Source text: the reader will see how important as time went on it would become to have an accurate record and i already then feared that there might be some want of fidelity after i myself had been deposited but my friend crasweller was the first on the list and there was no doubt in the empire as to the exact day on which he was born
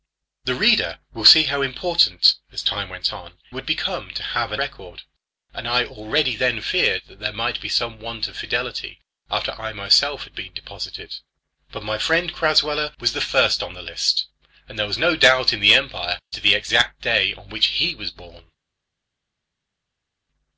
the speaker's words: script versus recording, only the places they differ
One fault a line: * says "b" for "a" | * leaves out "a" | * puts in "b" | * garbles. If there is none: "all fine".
* leaves out "it"
* leaves out "accurate"
* leaves out "as"